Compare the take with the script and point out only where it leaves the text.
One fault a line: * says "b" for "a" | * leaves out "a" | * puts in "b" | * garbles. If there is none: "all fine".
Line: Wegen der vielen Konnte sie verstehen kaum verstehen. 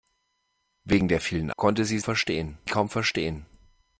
all fine